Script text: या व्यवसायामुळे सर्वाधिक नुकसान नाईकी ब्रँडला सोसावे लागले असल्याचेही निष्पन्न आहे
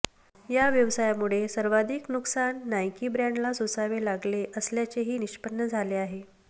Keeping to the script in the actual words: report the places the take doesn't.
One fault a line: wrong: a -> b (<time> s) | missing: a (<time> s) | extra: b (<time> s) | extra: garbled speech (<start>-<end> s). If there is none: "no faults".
extra: झाले (5.7 s)